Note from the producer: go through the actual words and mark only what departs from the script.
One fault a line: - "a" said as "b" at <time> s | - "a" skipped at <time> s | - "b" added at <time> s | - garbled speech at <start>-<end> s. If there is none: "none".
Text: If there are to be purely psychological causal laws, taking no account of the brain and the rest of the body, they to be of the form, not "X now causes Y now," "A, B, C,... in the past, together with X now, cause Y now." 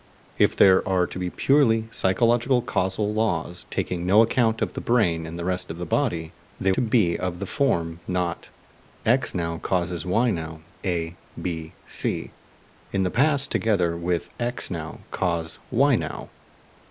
none